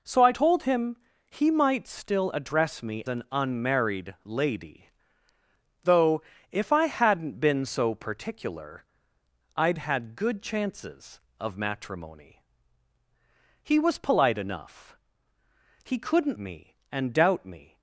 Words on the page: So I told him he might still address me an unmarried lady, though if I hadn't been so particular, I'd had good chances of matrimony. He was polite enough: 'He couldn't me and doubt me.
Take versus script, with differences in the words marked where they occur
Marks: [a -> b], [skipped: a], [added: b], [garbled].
So I told him he might still address me an unmarried lady, though if I hadn't been so particular, I'd had good chances of matrimony. He was polite enough: 'He couldn't me and doubt me.